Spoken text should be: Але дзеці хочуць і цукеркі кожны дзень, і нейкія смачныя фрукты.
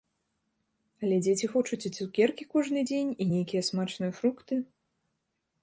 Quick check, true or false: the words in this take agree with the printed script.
true